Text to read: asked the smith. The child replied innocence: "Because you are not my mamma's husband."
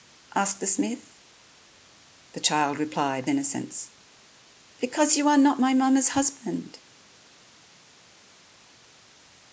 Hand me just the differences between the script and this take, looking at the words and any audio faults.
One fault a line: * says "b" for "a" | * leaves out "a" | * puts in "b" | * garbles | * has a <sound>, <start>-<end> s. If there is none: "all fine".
all fine